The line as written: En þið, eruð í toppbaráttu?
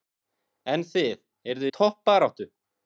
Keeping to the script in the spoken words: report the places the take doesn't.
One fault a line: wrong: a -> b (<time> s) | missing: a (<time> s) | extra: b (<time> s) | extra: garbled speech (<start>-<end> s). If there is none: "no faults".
no faults